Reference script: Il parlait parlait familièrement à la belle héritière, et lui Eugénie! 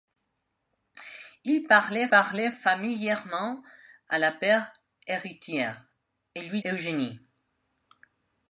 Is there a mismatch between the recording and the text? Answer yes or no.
no